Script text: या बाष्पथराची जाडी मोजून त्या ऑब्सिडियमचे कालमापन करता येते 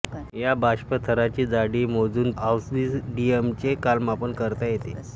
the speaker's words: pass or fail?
fail